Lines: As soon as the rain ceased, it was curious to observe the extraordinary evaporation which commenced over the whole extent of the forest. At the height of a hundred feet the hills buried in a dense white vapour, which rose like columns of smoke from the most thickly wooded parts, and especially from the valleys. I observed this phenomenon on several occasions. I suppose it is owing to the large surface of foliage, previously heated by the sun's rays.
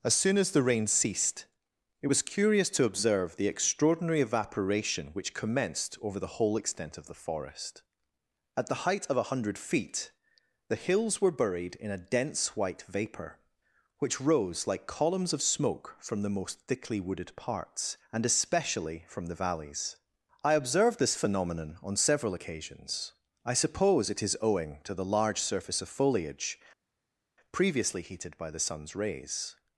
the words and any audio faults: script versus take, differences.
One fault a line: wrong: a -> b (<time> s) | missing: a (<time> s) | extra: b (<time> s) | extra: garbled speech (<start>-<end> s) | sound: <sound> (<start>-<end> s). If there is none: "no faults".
extra: were (11.2 s)